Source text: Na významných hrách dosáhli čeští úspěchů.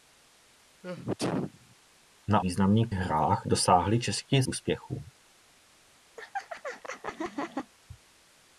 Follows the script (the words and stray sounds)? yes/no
no